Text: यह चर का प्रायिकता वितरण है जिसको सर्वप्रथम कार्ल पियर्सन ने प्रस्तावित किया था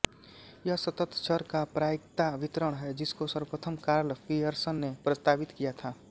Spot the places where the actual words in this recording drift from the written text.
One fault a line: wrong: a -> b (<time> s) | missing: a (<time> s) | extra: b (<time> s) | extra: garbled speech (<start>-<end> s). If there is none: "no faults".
extra: सतत (0.8 s)